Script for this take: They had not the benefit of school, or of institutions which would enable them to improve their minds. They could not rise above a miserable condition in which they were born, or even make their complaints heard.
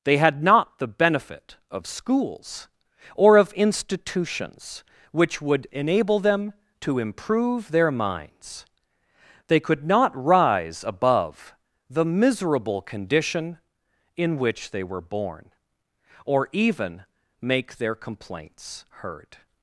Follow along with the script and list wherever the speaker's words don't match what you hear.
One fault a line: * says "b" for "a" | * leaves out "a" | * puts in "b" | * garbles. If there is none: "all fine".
* says "schools" for "school"
* says "the" for "a"